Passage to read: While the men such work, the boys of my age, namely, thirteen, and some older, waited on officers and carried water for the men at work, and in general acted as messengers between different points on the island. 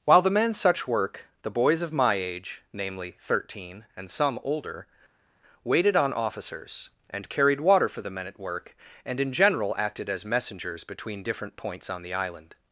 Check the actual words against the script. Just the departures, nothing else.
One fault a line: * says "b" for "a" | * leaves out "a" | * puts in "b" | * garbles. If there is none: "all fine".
all fine